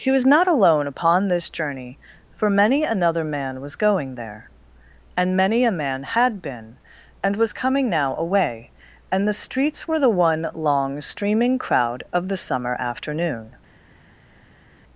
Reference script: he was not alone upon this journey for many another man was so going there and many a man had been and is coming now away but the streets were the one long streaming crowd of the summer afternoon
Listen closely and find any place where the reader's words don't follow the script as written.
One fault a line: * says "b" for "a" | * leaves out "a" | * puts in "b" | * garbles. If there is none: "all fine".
* leaves out "so"
* says "was" for "is"
* says "and" for "but"